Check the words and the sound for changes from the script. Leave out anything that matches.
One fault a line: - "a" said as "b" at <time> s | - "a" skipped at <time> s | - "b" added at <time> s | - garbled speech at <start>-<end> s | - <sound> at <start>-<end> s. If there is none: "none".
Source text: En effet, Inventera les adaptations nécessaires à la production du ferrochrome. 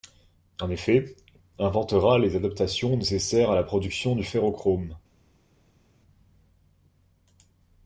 none